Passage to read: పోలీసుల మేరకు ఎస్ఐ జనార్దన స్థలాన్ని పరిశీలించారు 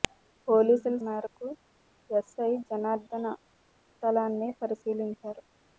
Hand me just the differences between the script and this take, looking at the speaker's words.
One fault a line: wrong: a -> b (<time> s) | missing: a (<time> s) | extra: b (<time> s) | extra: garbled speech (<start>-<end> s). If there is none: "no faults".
no faults